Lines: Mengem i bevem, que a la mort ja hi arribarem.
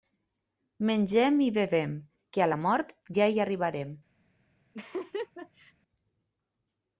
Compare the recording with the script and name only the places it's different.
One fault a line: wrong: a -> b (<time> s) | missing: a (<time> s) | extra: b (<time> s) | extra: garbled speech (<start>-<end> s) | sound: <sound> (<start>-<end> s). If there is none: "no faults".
sound: laugh (4.7-5.7 s)